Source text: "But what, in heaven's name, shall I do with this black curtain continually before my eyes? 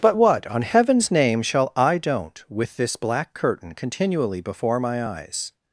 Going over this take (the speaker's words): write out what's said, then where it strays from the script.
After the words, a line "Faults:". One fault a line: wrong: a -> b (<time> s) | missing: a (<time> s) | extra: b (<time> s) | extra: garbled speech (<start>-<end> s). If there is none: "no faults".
"But what, on heaven's name, shall I don't with this black curtain continually before my eyes?
Faults:
wrong: in -> on (0.5 s)
wrong: do -> don't (2.0 s)